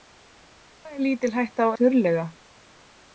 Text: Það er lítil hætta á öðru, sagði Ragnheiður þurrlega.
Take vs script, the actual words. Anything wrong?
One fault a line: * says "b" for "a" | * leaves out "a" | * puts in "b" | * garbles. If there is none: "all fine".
* leaves out "öðru sagði Ragnheiður"